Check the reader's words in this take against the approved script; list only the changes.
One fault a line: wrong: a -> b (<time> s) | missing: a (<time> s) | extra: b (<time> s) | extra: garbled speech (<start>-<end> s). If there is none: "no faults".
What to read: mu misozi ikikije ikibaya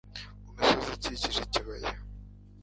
no faults